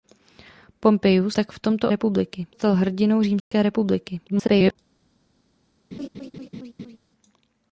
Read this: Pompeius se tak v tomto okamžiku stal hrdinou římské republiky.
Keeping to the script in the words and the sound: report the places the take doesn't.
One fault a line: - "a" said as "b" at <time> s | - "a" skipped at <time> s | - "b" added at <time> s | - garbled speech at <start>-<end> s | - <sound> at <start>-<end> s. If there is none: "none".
- "se" skipped at 1.4 s
- "okamžiku" said as "republiky" at 1.9 s
- dropout at 3.4-3.5 s
- garbled speech at 4.3-4.8 s
- laugh at 5.9-7.0 s